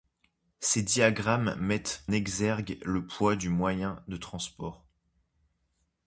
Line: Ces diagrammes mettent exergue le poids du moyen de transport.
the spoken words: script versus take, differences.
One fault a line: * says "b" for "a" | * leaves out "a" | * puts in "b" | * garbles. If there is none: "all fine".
all fine